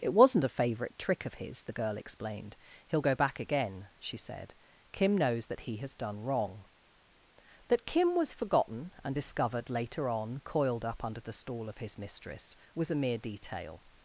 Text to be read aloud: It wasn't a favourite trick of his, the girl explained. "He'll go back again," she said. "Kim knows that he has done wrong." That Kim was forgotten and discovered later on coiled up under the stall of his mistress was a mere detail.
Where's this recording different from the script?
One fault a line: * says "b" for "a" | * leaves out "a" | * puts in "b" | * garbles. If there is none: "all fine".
all fine